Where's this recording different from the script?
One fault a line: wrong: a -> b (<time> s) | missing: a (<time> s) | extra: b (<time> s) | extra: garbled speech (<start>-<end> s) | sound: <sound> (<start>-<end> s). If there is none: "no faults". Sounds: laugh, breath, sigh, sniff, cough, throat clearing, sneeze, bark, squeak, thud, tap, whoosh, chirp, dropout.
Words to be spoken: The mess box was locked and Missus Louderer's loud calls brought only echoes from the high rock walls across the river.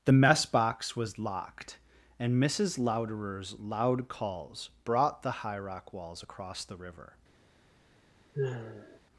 missing: only echoes from (5.2 s)
sound: sigh (8.3-9.0 s)